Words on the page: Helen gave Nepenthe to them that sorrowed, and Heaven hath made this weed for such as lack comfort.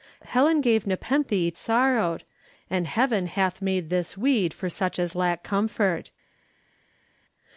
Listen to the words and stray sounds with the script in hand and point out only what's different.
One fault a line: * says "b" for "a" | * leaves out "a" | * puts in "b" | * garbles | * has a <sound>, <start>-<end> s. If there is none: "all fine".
* leaves out "to them that"